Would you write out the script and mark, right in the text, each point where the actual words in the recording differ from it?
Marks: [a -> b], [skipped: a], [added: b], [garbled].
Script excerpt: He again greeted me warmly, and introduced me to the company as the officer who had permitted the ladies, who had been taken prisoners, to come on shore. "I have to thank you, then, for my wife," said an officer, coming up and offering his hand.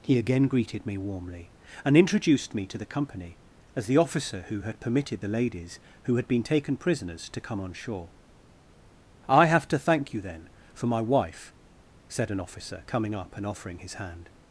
He again greeted me warmly, and introduced me to the company as the officer who had permitted the ladies, who had been taken prisoners, to come on shore. "I have to thank you, then, for my wife," said an officer, coming up and offering his hand.